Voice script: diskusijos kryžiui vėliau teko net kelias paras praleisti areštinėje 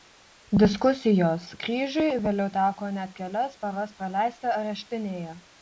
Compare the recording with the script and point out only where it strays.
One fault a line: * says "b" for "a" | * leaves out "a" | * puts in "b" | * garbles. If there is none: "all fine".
all fine